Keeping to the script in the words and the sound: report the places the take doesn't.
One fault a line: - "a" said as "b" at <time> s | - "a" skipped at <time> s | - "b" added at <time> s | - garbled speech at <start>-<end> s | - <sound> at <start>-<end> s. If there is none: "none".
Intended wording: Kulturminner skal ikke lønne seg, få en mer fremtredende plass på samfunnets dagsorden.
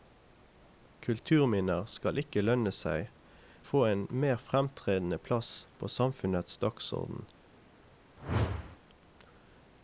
- whoosh at 8.2-8.8 s